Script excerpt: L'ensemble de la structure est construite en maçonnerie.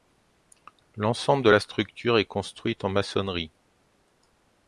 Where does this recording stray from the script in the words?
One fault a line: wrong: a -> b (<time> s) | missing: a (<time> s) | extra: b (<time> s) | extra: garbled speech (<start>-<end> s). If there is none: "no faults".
no faults